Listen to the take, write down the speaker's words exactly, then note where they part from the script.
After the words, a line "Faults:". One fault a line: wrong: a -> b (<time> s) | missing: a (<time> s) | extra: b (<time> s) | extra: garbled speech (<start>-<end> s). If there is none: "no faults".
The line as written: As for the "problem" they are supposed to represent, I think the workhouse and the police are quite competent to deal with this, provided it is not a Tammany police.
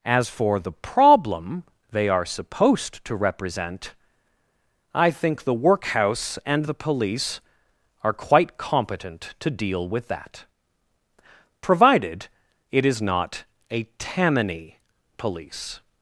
As for the "problem" they are supposed to represent, I think the workhouse and the police are quite competent to deal with that, provided it is not a Tammany police.
Faults:
wrong: this -> that (10.1 s)